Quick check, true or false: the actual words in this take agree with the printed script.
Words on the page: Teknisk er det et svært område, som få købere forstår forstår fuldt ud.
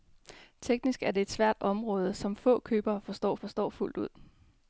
true